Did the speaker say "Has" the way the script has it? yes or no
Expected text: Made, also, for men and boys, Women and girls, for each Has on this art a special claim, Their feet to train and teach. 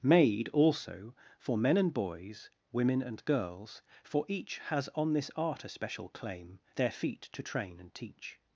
yes